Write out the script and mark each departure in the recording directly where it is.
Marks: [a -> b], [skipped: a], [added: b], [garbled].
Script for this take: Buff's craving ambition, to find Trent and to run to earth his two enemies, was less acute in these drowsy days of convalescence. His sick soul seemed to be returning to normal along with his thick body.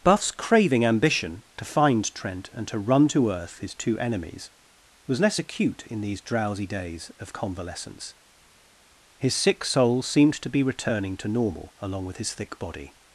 Buff's craving ambition, to find Trent and to run to earth his two enemies, was less acute in these drowsy days of convalescence. His sick soul seemed to be returning to normal along with his thick body.